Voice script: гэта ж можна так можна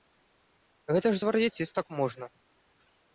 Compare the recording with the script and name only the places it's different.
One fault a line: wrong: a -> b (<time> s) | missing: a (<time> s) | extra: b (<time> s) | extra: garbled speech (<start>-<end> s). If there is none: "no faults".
wrong: можна -> звар'яцець (1.2 s)